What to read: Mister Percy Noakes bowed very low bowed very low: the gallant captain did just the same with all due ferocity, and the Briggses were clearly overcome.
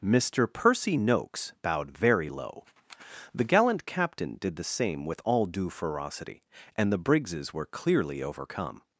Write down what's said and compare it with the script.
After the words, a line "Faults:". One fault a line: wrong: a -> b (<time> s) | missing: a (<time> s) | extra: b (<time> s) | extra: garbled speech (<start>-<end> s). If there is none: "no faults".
Mister Percy Noakes bowed very low: the gallant captain did the same with all due ferocity, and the Briggses were clearly overcome.
Faults:
missing: bowed very low (2.7 s)
missing: just (4.6 s)